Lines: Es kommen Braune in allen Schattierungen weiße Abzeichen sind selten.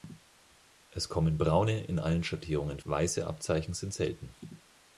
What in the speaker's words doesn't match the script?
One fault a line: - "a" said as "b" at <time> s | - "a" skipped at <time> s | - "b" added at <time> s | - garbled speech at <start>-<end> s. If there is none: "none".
none